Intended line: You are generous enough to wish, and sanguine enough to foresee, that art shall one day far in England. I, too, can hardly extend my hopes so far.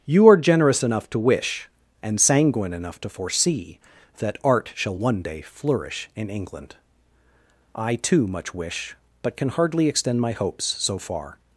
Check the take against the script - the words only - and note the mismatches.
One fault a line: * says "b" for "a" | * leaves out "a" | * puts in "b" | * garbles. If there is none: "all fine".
* says "flourish" for "far"
* puts in "much wish but"